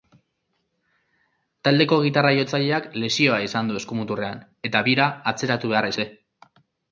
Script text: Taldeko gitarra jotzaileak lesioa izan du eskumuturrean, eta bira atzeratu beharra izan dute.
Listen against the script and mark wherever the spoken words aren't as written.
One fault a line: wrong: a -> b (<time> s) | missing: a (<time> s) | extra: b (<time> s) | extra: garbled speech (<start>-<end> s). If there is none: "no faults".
missing: izan (5.9 s)